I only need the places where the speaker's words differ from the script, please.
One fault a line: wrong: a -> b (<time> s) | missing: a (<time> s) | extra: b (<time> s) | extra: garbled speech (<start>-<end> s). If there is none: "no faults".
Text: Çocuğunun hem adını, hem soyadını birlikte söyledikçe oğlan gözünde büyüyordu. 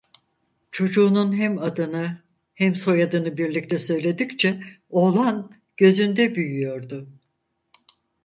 no faults